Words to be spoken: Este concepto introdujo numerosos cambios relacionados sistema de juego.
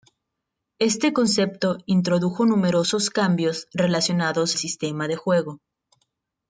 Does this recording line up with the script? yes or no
yes